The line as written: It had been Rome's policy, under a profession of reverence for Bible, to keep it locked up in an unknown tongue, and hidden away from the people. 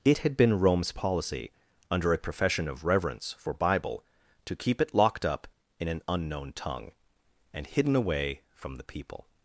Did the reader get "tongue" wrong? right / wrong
right